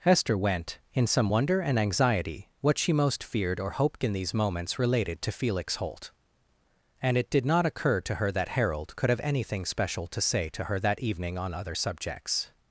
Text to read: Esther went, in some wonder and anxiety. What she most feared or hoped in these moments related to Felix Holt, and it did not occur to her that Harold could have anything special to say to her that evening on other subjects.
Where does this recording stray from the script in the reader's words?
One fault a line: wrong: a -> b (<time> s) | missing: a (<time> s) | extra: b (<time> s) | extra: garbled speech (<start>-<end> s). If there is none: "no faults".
wrong: Esther -> Hester (0.0 s)